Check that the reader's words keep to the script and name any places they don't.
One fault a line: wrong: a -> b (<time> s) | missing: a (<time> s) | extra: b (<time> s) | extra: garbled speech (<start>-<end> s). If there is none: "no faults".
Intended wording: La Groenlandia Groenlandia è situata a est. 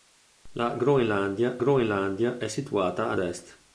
no faults